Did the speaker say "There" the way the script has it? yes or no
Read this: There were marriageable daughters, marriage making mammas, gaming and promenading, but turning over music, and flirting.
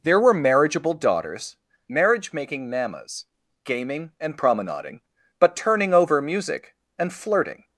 yes